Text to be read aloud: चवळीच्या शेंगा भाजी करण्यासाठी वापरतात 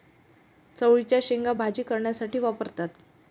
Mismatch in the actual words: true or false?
false